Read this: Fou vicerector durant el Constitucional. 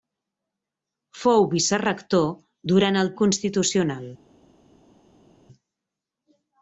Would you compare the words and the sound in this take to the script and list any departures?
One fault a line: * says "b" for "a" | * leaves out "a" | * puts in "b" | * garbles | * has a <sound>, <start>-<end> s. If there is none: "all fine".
all fine